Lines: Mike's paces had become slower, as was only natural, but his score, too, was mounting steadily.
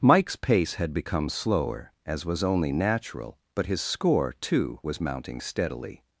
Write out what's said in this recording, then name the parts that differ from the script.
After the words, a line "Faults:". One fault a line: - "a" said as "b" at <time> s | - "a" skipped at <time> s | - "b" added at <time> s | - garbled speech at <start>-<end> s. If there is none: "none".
Mike's pace had become slower, as was only natural, but his score, too, was mounting steadily.
Faults:
- "paces" said as "pace" at 0.3 s